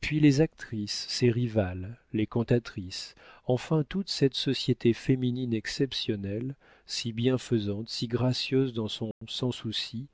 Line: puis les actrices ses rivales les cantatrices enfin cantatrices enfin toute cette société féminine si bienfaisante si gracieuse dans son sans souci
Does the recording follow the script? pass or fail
fail